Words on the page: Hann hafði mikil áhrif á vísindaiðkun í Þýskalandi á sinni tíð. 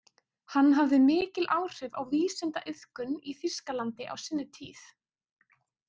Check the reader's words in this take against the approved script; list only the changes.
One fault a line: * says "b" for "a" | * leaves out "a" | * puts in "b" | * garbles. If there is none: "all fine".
all fine